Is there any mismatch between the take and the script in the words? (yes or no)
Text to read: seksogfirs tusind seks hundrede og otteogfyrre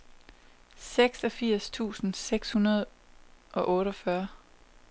no